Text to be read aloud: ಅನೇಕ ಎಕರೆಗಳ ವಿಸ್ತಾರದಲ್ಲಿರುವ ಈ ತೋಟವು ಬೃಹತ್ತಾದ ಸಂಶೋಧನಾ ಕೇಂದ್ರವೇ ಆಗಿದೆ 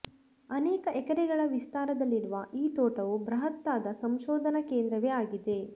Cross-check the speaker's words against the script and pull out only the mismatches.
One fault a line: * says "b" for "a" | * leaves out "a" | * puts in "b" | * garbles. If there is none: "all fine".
all fine